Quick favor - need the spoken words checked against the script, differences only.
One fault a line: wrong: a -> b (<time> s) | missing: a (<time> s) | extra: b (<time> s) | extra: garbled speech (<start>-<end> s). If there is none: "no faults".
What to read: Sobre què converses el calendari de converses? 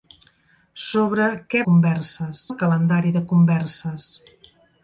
no faults